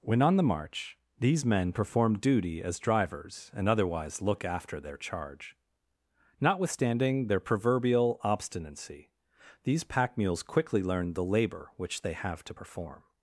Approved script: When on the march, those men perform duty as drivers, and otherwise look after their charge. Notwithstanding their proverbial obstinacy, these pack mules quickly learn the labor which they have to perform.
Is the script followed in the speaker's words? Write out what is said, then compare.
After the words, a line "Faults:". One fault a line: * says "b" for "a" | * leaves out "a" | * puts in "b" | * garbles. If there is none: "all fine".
When on the march, these men perform duty as drivers, and otherwise look after their charge. Notwithstanding their proverbial obstinacy, these pack mules quickly learn the labor which they have to perform.
Faults:
* says "these" for "those"